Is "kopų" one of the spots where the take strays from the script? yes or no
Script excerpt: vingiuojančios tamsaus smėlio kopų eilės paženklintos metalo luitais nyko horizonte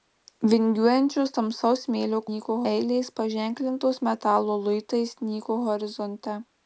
yes